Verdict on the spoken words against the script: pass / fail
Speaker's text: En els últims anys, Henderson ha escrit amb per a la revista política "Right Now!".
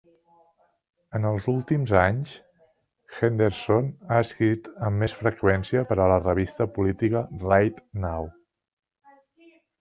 fail